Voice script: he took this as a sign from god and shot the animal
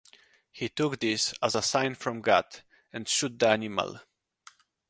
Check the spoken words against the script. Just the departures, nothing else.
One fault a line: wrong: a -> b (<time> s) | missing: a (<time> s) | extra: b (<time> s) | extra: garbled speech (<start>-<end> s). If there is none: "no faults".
no faults